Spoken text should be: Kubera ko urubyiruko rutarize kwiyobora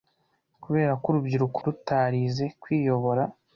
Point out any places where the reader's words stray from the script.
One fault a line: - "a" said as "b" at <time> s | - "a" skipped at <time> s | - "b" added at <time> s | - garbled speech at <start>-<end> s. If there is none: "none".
none